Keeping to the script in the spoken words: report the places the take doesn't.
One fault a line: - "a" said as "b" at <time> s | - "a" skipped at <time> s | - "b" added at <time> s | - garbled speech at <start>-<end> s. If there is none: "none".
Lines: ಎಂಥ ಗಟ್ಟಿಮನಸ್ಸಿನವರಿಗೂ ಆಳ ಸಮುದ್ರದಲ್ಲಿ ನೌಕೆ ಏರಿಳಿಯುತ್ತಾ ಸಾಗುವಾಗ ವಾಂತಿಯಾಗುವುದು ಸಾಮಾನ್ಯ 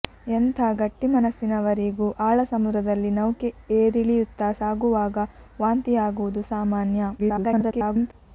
- garbled speech at 7.2-8.1 s